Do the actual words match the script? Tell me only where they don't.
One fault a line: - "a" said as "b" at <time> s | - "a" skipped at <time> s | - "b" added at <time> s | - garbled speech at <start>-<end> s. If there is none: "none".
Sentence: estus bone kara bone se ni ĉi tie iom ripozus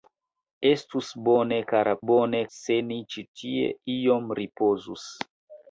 none